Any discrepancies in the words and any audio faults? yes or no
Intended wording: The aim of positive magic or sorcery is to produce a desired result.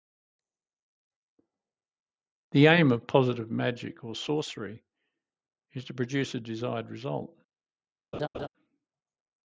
yes